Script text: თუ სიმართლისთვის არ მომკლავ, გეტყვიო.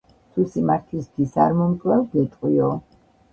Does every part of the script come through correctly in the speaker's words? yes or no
yes